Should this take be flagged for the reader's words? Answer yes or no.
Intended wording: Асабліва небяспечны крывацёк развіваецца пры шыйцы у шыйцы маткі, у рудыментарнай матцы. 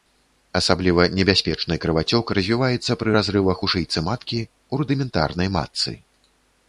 yes